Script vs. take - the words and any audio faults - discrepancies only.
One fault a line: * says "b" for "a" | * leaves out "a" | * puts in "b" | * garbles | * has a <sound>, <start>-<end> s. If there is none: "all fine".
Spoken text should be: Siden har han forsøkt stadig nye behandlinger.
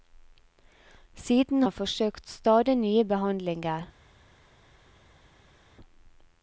* leaves out "har"